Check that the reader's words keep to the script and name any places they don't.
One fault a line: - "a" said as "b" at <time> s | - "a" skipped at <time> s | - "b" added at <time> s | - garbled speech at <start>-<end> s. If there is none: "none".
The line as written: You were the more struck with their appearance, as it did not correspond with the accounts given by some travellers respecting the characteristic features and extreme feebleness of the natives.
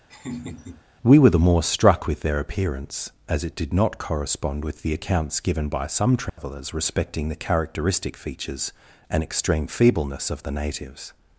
- "You" said as "We" at 1.0 s